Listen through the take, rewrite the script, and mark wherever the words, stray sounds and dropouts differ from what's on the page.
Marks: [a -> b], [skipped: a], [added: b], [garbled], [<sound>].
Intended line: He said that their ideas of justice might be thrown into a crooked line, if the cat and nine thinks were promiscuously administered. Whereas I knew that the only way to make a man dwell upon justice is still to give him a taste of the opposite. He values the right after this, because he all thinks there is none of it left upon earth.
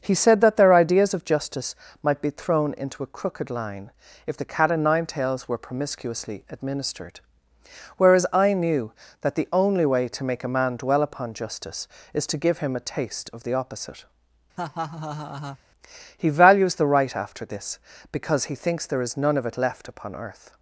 He said that their ideas of justice might be thrown into a crooked line, if the cat and nine [thinks -> tails] were promiscuously administered. Whereas I knew that the only way to make a man dwell upon justice is [skipped: still] to give him a taste of the opposite. [laugh] He values the right after this, because he [skipped: all] thinks there is none of it left upon earth.